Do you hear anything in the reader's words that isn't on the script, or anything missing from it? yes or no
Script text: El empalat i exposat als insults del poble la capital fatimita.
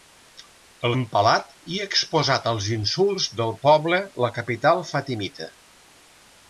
no